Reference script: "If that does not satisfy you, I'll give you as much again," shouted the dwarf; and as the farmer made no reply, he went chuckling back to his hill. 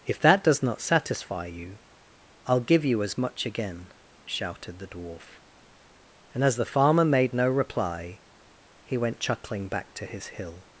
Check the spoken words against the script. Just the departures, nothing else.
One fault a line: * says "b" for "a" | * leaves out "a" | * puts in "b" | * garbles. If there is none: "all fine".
all fine